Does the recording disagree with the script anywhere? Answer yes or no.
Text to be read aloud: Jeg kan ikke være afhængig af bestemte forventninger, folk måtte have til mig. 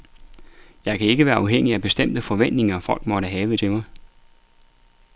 no